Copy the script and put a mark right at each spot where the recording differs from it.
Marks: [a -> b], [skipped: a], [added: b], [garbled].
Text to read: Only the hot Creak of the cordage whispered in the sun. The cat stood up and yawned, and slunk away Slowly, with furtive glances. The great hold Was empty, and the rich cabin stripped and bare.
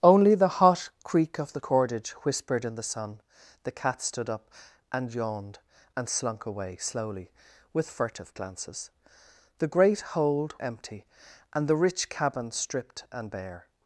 Only the hot Creak of the cordage whispered in the sun. The cat stood up and yawned, and slunk away Slowly, with furtive glances. The great hold [skipped: Was] empty, and the rich cabin stripped and bare.